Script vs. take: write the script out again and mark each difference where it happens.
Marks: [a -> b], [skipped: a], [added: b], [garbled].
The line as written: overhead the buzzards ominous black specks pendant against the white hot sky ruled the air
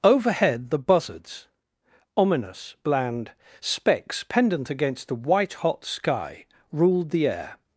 overhead the buzzards ominous [black -> bland] specks pendant against the white hot sky ruled the air